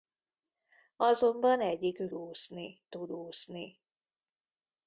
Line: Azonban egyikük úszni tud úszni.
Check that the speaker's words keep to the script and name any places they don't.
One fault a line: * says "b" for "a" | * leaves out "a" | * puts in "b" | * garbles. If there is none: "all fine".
all fine